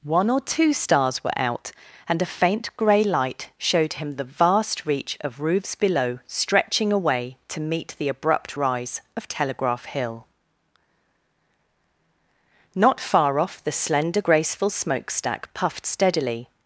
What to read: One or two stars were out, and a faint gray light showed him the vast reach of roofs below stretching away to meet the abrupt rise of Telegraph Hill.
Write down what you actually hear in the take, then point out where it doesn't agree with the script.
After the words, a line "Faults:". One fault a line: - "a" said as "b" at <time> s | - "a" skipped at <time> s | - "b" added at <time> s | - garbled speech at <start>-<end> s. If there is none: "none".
One or two stars were out, and a faint gray light showed him the vast reach of roofs below stretching away to meet the abrupt rise of Telegraph Hill. Not far off the slender, graceful smokestack puffed steadily
Faults:
- "Not far off the slender graceful smokestack puffed steadily" added at 12.7 s